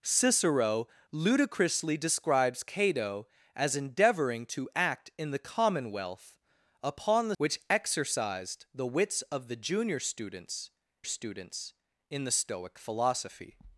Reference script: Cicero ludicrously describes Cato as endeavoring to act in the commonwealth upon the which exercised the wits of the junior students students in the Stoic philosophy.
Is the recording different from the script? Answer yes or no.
no